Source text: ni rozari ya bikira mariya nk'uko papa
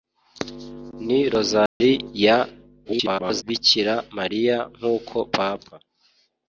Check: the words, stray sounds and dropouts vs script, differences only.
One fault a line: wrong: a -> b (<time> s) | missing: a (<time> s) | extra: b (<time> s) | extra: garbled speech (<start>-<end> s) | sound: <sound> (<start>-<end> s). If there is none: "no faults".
sound: dropout (1.7-1.8 s)
extra: garbled speech (2.8-3.4 s)